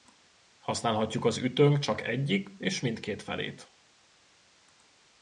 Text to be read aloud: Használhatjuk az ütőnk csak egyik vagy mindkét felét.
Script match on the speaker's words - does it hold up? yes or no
no